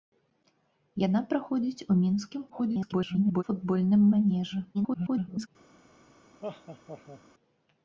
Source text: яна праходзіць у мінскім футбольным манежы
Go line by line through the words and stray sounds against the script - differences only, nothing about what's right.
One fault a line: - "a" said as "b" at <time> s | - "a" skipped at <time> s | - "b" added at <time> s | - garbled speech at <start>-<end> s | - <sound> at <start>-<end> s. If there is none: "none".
- garbled speech at 2.5-3.4 s
- garbled speech at 4.7-5.5 s
- laugh at 6.4-7.2 s